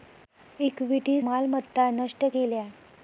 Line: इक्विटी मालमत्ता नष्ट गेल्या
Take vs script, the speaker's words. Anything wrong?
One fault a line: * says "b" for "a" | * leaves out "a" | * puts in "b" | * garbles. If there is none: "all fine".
all fine